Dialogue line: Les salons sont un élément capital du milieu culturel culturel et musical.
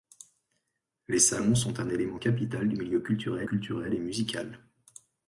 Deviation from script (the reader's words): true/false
false